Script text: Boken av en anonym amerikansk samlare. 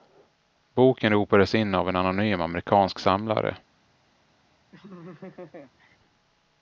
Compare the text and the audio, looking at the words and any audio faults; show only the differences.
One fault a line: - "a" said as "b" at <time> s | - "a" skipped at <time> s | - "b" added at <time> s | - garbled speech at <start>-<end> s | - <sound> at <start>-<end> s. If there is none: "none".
- "ropades in" added at 1.1 s
- laugh at 4.7-6.0 s